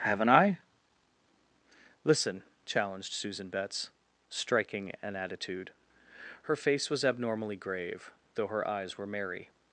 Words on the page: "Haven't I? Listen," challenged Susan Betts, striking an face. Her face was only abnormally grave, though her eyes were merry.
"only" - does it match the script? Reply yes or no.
no